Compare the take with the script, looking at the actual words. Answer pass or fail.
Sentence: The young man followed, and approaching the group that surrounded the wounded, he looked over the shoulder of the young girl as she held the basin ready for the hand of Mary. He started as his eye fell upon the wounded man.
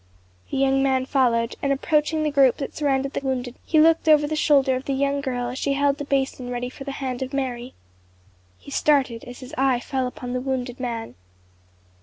pass